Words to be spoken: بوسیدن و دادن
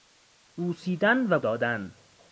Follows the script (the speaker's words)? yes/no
yes